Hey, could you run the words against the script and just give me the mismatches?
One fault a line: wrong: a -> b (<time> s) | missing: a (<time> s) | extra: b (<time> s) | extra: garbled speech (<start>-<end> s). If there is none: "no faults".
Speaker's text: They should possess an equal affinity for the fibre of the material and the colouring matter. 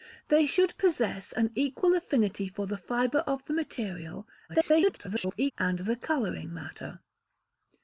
extra: garbled speech (4.5-5.5 s)